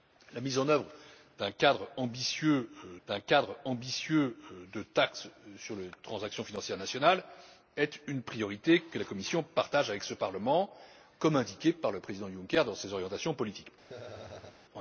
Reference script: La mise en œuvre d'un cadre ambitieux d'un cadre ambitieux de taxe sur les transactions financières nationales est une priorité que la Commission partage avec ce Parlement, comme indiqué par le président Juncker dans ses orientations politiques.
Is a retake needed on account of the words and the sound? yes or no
yes